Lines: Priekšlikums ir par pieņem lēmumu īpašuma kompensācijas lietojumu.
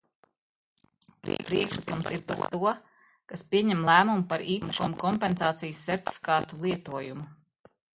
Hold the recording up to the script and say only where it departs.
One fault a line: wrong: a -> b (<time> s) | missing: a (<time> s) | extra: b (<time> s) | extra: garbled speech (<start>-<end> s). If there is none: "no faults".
extra: to kas (2.5 s)
extra: par (4.3 s)
extra: sertifikātu (5.9 s)